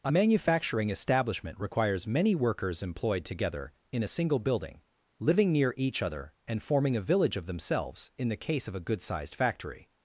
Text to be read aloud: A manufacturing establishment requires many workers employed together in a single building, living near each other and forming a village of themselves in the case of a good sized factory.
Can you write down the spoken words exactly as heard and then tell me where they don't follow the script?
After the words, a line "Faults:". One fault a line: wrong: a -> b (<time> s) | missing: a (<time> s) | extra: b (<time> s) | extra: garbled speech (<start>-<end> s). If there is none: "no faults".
A manufacturing establishment requires many workers employed together in a single building, living near each other and forming a village of themselves in the case of a good sized factory.
Faults:
no faults